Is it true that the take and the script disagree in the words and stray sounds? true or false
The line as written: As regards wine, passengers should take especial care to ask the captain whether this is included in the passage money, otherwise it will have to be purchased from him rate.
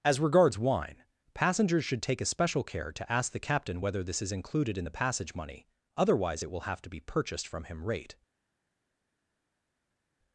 false